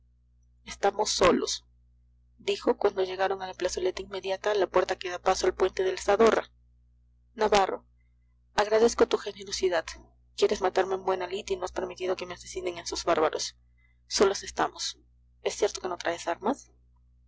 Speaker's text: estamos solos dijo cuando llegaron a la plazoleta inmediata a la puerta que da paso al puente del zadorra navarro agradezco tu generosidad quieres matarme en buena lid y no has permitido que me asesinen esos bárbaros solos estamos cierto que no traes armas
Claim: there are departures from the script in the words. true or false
true